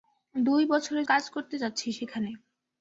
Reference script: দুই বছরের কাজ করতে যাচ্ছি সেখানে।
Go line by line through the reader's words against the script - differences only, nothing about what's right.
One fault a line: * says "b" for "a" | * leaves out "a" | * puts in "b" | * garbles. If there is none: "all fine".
all fine